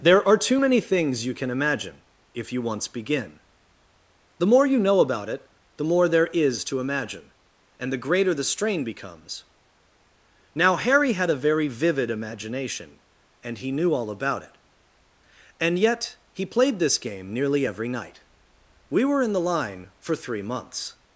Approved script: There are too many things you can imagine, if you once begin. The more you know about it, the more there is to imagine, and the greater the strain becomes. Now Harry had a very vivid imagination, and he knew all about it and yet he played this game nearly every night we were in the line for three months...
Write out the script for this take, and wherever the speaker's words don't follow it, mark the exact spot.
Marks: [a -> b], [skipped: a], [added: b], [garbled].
There are too many things you can imagine, if you once begin. The more you know about it, the more there is to imagine, and the greater the strain becomes. Now Harry had a very vivid imagination, and he knew all about it and yet he played this game nearly every night we were in the line for three months...